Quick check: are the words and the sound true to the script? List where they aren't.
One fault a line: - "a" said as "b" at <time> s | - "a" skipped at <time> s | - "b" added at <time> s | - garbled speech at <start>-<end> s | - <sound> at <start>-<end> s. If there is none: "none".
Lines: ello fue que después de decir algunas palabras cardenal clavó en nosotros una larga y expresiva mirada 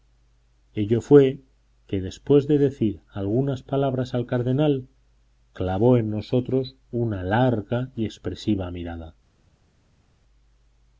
- "al" added at 4.1 s